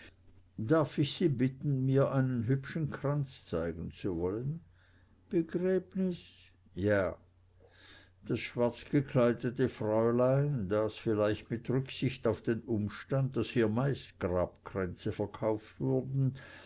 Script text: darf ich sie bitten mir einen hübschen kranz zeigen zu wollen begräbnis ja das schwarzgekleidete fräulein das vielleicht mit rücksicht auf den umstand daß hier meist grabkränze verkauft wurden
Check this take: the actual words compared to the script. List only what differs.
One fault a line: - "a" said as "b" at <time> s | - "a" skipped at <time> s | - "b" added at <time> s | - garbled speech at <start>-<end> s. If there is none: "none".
none